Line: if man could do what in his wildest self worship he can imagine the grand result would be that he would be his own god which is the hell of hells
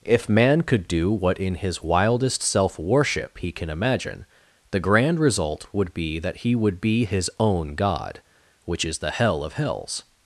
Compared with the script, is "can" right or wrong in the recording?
right